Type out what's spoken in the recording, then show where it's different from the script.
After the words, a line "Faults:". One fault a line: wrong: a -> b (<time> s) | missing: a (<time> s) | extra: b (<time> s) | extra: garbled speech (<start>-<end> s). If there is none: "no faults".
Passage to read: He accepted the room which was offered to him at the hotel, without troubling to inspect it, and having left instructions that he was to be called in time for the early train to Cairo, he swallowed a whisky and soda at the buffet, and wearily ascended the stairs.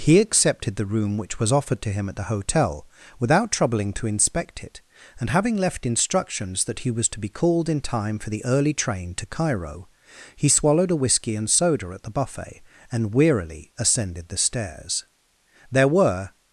He accepted the room which was offered to him at the hotel, without troubling to inspect it, and having left instructions that he was to be called in time for the early train to Cairo, he swallowed a whisky and soda at the buffet, and wearily ascended the stairs. There were
Faults:
extra: There were (15.7 s)